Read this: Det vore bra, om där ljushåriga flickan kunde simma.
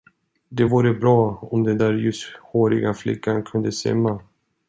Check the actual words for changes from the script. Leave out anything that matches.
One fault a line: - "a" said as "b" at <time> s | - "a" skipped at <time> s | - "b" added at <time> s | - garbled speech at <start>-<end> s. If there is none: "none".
- "den" added at 1.6 s